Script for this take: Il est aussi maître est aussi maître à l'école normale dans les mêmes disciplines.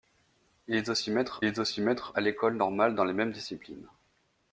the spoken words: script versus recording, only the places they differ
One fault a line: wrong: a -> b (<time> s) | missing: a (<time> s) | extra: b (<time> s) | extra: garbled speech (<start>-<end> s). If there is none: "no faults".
no faults